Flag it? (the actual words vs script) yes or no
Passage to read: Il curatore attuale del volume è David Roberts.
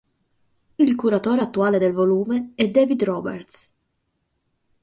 no